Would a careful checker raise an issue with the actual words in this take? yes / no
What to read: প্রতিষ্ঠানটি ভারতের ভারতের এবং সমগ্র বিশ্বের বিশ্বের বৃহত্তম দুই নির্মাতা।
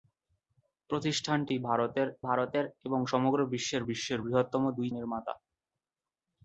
no